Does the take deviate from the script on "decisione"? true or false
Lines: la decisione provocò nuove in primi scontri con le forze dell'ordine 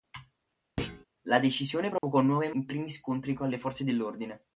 false